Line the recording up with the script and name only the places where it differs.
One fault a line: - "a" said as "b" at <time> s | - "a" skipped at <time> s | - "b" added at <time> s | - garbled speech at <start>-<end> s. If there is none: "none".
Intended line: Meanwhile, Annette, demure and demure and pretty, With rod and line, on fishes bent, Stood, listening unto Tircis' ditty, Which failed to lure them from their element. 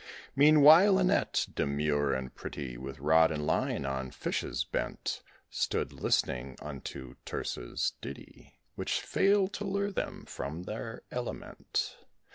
- "demure and" skipped at 2.3 s